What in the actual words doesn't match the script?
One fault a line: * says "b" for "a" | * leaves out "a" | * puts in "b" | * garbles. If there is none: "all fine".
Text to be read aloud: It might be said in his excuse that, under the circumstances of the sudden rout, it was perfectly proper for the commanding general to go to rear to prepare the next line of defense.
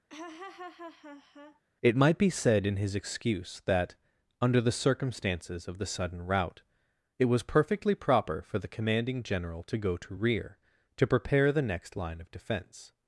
all fine